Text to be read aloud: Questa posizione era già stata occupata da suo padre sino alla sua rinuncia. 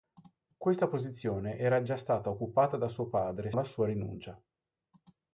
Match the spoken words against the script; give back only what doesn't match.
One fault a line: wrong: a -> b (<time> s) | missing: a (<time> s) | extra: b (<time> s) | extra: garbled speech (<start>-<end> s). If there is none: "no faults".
missing: sino (3.5 s)